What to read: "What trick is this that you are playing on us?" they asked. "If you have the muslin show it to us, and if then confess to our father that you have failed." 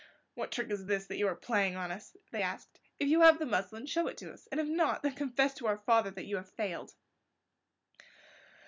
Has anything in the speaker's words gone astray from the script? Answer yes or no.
yes